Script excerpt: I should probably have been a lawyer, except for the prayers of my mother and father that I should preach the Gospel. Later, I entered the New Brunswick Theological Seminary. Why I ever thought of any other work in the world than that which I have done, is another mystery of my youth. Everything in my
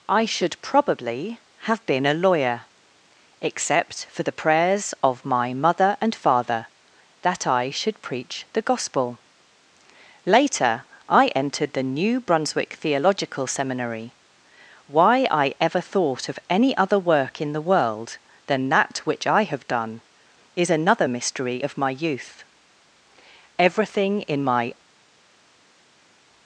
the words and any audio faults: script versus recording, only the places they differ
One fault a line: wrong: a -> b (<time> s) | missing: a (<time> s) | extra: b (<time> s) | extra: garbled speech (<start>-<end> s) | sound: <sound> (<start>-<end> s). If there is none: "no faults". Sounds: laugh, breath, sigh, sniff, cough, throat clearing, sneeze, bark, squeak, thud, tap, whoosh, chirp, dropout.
no faults